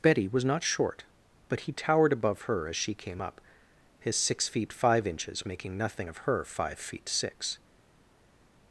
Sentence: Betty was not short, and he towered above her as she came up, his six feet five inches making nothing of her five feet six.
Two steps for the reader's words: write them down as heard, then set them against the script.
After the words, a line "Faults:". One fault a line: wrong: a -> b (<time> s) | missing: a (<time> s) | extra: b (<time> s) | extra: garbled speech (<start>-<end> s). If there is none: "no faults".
Betty was not short, but he towered above her as she came up, his six feet five inches making nothing of her five feet six.
Faults:
wrong: and -> but (1.5 s)